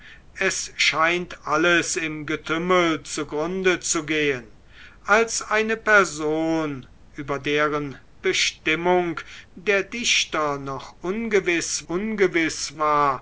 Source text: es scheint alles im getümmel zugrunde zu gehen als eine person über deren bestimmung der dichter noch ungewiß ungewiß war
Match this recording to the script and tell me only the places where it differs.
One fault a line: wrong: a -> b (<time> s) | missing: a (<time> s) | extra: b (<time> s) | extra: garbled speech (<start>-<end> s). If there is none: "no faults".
no faults